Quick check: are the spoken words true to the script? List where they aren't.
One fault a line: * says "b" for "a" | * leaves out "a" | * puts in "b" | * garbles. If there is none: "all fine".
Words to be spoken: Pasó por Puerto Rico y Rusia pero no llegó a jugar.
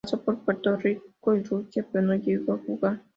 all fine